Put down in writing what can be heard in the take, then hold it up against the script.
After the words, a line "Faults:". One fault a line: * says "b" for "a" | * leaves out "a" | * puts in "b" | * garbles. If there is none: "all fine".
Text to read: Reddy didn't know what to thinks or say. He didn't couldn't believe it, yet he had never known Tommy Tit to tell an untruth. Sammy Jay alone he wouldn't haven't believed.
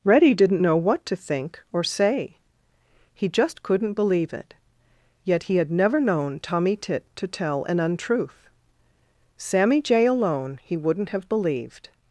Reddy didn't know what to think or say. He just couldn't believe it, yet he had never known Tommy Tit to tell an untruth. Sammy Jay alone he wouldn't have believed.
Faults:
* says "think" for "thinks"
* says "just" for "didn't"
* says "have" for "haven't"